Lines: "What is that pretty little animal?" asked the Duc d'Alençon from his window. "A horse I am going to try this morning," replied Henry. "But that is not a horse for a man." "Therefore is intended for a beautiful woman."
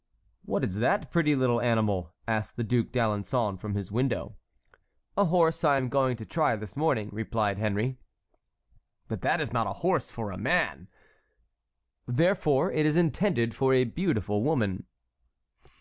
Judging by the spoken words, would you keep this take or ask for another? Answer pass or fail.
fail